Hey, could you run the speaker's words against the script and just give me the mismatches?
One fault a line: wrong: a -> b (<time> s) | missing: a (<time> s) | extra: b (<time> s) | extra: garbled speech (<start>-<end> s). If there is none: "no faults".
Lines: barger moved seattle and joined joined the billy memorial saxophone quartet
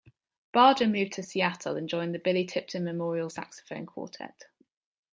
extra: to (1.1 s)
missing: joined (2.1 s)
extra: tipton (2.5 s)